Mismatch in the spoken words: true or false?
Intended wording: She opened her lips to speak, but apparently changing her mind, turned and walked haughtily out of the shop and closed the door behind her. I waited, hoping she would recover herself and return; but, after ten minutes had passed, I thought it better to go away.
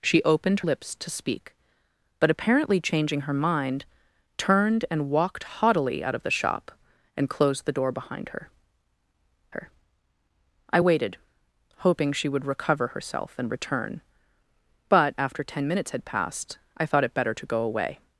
true